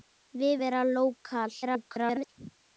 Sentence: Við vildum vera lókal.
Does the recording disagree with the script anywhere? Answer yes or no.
yes